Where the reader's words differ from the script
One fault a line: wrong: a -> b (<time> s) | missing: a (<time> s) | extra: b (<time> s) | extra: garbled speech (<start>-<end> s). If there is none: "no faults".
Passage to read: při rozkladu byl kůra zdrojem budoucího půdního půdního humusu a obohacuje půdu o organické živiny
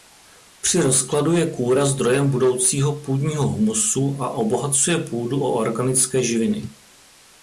wrong: byl -> je (1.3 s)
missing: půdního (3.5 s)